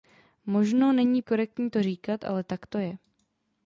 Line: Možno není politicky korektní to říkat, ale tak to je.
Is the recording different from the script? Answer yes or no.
yes